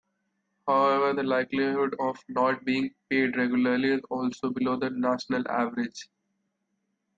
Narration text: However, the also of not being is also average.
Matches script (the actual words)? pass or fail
fail